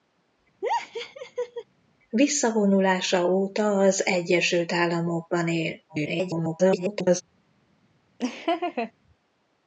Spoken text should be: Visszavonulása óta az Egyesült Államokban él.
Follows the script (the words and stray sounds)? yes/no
no